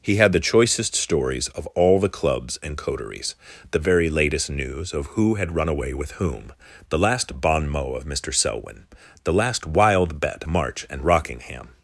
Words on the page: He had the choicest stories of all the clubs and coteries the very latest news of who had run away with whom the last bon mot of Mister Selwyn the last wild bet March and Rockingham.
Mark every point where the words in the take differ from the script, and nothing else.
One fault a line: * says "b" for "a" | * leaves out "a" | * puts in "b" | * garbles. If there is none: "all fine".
all fine